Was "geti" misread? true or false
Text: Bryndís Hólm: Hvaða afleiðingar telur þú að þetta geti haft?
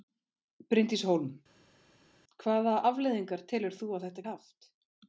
true